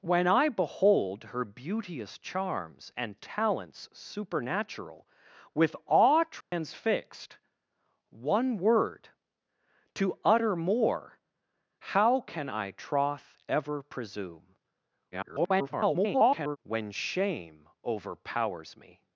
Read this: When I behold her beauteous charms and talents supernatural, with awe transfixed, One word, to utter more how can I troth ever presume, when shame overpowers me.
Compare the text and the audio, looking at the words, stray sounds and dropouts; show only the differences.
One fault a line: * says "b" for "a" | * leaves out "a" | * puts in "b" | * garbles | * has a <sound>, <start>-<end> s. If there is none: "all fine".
* has a dropout, 6.4-6.5 s
* garbles